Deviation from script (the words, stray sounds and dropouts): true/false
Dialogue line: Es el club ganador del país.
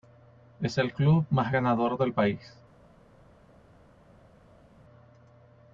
true